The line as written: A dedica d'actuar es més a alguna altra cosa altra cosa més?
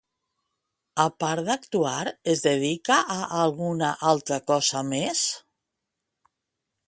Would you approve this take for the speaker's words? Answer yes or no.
no